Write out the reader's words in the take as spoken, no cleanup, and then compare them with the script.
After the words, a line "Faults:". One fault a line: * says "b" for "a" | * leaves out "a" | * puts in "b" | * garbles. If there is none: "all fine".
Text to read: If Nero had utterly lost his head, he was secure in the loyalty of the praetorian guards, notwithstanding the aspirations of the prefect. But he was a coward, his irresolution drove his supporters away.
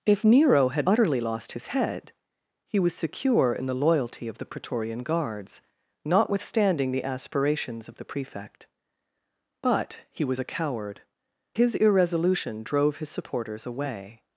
If Nero had utterly lost his head, he was secure in the loyalty of the praetorian guards, notwithstanding the aspirations of the prefect. But he was a coward, his irresolution drove his supporters away.
Faults:
all fine